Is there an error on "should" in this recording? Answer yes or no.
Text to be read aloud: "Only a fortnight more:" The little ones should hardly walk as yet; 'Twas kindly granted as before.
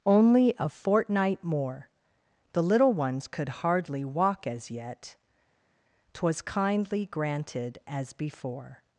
yes